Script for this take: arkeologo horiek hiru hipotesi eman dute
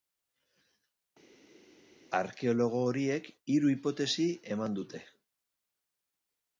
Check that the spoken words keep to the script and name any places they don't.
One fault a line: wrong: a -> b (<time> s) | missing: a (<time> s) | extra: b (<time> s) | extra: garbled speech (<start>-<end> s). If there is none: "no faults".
no faults